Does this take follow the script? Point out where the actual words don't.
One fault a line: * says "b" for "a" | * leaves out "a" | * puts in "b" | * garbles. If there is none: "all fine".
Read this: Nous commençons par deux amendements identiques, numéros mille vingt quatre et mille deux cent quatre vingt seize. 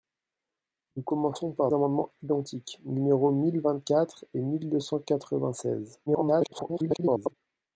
* leaves out "deux"
* garbles